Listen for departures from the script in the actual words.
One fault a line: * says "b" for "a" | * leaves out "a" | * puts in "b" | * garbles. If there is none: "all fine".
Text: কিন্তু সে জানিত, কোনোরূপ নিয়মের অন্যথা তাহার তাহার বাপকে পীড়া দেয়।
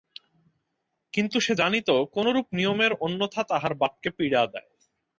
* leaves out "তাহার"